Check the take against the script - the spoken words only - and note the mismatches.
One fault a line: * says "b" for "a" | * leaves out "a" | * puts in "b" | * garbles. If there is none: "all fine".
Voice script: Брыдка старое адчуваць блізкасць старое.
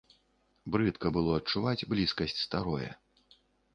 * says "было" for "старое"